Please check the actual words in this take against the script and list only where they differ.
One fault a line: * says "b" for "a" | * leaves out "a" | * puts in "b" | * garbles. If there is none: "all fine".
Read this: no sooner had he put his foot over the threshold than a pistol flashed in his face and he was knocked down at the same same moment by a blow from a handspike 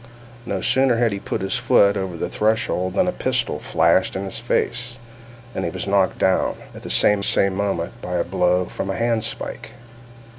all fine